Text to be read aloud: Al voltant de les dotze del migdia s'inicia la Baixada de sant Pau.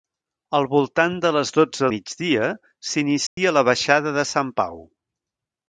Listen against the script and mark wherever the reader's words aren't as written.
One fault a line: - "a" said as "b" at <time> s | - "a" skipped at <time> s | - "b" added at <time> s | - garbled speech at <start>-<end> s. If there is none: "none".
- "del" skipped at 1.9 s